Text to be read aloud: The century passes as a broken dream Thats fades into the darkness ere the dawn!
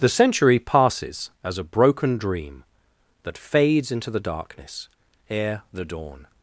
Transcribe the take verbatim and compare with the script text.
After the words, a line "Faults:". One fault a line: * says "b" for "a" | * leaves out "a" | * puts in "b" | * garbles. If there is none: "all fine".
The century passes as a broken dream That fades into the darkness ere the dawn!
Faults:
* says "That" for "Thats"